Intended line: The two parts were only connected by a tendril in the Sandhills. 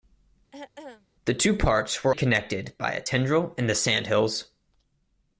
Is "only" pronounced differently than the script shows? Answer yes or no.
yes